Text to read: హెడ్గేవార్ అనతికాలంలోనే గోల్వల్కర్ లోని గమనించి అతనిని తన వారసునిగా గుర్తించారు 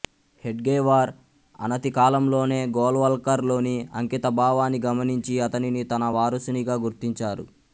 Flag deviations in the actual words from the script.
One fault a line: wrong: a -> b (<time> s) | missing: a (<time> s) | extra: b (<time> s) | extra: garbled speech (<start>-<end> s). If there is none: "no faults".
extra: అంకితభావాన్ని (4.0 s)